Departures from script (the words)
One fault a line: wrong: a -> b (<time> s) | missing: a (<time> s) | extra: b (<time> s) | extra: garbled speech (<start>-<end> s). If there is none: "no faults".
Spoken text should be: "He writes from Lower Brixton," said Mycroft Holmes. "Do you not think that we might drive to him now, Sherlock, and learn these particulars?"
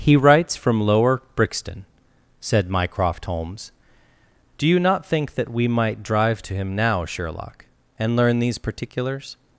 no faults